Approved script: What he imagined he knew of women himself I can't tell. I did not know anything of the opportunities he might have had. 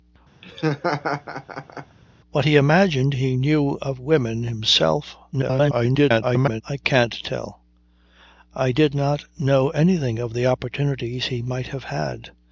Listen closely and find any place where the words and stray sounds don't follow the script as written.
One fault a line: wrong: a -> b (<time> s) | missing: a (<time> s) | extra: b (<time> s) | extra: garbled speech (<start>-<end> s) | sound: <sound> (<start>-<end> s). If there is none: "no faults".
sound: laugh (0.4-2.0 s)
extra: garbled speech (5.3-6.6 s)